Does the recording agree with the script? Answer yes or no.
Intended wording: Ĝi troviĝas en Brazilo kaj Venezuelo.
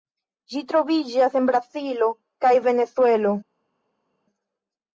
yes